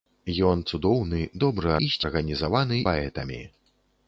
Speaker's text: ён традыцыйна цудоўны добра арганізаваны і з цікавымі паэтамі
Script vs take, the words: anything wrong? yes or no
yes